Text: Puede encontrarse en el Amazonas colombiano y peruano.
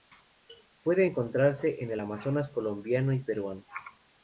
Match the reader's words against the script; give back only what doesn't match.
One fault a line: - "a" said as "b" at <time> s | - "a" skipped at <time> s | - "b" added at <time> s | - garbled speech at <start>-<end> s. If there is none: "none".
none